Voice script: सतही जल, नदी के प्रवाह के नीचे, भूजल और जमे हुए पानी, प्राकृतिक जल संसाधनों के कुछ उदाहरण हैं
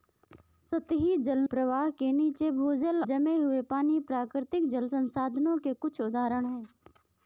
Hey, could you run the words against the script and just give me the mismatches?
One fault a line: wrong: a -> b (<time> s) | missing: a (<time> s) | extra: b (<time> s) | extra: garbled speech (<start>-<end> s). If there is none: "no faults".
missing: नदी के (1.4 s)
missing: और (3.0 s)